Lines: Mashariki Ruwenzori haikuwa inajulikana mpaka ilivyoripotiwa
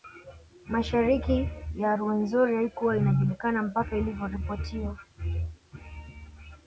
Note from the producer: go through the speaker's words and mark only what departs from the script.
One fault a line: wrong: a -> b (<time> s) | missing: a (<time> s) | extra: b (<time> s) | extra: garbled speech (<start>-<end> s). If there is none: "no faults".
extra: ya (1.8 s)